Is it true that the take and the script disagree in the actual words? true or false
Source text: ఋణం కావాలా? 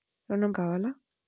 false